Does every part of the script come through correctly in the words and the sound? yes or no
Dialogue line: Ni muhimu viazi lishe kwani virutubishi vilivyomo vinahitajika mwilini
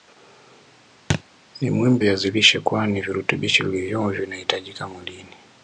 no